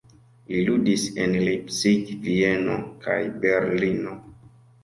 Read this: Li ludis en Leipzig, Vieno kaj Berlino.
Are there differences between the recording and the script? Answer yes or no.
no